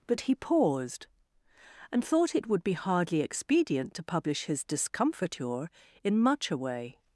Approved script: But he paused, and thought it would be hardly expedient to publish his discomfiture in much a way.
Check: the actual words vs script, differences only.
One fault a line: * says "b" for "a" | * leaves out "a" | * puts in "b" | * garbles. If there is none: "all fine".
all fine